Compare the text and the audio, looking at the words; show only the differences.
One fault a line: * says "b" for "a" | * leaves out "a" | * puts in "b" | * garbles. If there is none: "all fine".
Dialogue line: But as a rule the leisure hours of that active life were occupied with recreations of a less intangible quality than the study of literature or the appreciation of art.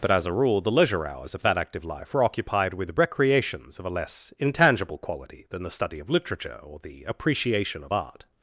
all fine